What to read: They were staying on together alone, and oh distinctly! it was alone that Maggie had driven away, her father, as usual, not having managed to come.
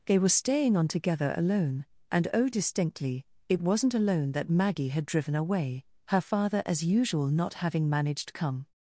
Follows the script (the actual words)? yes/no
no